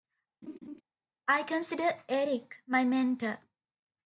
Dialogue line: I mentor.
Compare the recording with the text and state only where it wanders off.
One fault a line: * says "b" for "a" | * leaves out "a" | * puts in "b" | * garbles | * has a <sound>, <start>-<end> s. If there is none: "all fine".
* has a laugh, 0.4-0.8 s
* puts in "consider Eric my"